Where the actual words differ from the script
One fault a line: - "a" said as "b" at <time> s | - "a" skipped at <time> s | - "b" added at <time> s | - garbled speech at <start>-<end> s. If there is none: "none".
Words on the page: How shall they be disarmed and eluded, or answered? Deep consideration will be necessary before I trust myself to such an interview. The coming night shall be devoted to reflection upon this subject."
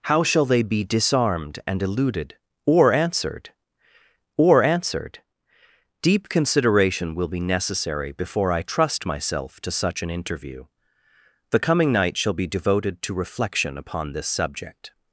- "or answered" added at 4.4 s